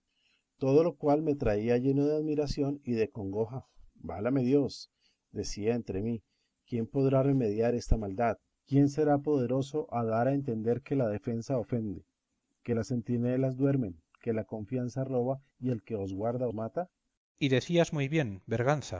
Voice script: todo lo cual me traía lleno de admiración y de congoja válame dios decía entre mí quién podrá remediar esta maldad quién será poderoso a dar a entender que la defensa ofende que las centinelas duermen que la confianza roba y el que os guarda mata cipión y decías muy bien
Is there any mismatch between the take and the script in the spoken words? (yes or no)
no